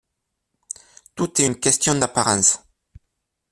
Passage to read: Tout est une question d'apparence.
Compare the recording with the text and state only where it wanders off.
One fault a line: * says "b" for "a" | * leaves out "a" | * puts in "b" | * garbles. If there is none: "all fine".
all fine